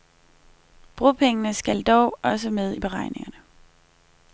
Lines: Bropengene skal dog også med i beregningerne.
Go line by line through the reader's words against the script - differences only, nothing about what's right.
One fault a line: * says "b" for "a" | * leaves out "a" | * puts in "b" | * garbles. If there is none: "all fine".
all fine